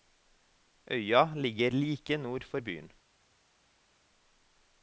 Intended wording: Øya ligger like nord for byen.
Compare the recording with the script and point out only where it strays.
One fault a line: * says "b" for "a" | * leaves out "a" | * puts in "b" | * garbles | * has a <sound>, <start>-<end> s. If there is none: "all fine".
all fine